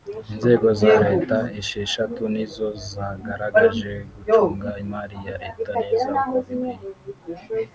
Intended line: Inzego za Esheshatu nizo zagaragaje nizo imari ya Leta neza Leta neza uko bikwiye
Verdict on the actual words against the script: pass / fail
fail